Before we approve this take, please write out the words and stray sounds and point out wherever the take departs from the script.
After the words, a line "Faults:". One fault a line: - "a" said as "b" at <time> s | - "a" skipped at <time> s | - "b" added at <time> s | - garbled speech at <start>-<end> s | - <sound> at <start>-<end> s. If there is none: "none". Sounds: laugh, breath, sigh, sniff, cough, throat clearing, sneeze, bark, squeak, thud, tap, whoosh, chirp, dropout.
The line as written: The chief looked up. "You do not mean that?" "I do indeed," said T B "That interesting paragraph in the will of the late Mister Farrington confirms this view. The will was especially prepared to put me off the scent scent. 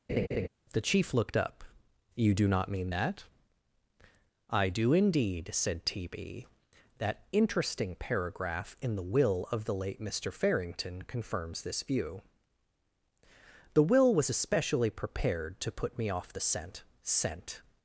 The chief looked up. "You do not mean that?" "I do indeed," said T B "That interesting paragraph in the will of the late Mister Farrington confirms this view. The will was especially prepared to put me off the scent scent.
Faults:
- laugh at 0.1-0.5 s